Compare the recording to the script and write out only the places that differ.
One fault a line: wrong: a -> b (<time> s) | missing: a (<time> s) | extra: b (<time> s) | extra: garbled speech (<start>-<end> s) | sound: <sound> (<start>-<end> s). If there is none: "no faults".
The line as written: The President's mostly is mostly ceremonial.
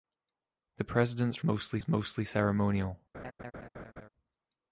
sound: laugh (3.1-4.1 s)